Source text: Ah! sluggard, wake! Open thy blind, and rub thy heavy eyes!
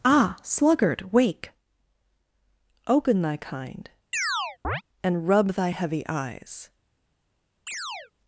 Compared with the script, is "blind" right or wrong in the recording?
wrong